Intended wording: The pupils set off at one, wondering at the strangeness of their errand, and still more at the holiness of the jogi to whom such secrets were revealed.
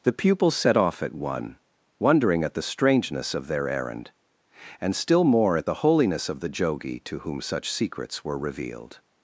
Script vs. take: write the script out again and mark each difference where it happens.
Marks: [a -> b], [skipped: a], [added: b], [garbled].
The pupils set off at one, wondering at the strangeness of their errand, and still more at the holiness of the jogi to whom such secrets were revealed.